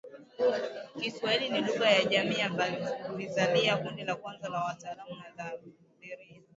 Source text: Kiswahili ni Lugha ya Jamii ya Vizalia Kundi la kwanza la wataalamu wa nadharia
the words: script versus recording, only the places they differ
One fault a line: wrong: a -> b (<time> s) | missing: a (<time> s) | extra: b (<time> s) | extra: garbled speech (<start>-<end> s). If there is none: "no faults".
no faults